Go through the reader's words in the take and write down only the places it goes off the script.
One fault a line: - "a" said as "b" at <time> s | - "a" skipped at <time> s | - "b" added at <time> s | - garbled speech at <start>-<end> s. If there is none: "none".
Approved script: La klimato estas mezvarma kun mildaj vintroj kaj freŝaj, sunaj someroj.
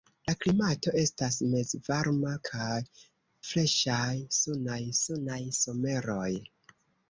- "kun mildaj vintroj" skipped at 2.3 s
- "sunaj" added at 5.0 s